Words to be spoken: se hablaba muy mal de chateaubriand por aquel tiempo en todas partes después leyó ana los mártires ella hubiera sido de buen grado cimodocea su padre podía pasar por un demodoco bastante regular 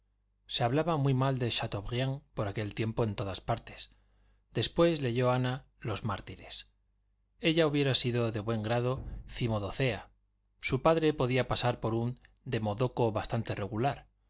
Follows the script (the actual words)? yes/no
yes